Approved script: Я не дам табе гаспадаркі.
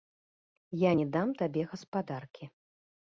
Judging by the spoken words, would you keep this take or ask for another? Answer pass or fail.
pass